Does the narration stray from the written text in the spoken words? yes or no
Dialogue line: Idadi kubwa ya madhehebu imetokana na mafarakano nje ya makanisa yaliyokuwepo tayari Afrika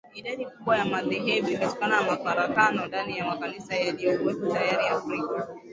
yes